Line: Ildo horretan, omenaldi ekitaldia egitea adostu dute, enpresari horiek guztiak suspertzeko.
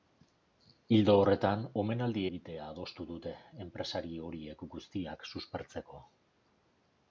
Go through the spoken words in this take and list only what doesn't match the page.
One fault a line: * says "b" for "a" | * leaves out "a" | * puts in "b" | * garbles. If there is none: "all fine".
* leaves out "ekitaldia"